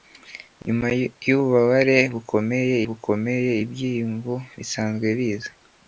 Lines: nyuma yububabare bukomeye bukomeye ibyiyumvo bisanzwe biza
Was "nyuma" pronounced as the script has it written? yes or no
yes